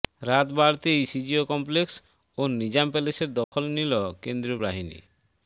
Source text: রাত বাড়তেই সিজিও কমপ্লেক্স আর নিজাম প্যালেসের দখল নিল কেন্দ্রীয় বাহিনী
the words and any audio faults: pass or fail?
fail